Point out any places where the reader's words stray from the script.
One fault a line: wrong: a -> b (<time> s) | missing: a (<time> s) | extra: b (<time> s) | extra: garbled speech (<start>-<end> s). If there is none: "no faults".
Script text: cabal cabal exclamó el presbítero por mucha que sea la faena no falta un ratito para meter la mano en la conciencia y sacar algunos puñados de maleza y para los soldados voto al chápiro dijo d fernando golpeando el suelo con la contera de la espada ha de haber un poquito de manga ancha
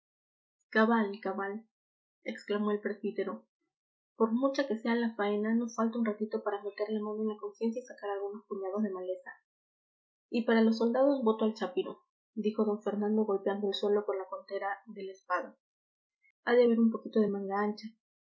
no faults